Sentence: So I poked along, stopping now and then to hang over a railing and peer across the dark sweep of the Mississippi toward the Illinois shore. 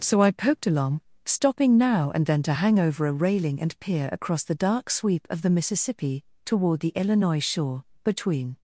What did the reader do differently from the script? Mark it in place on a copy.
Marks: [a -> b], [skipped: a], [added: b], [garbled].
So I poked along, stopping now and then to hang over a railing and peer across the dark sweep of the Mississippi toward the Illinois shore. [added: Between]